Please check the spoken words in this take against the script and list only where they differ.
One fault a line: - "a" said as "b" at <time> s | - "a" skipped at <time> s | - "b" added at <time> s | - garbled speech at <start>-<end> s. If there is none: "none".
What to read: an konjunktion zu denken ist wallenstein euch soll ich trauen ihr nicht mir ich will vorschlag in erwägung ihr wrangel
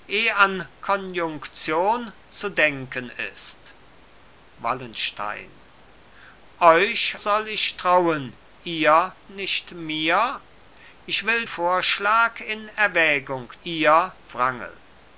none